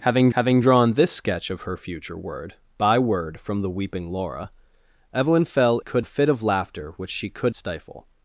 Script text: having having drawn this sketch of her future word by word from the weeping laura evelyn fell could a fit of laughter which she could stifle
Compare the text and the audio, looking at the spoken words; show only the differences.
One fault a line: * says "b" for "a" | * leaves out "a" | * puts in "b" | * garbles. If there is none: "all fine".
all fine